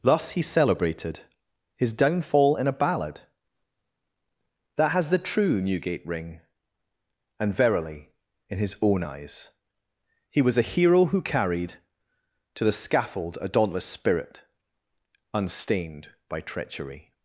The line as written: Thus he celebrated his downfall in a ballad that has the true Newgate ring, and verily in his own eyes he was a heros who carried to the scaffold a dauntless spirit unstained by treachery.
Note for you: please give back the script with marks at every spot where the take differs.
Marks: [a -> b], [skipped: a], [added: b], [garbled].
Thus he celebrated his downfall in a ballad that has the true Newgate ring, and verily in his own eyes he was a [heros -> hero] who carried to the scaffold a dauntless spirit unstained by treachery.